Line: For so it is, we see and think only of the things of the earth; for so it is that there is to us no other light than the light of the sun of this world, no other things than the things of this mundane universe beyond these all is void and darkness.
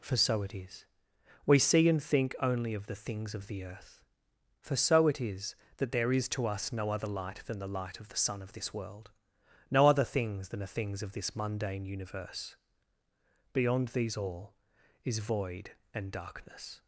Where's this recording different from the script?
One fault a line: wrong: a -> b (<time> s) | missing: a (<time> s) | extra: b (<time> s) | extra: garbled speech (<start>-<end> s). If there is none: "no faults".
no faults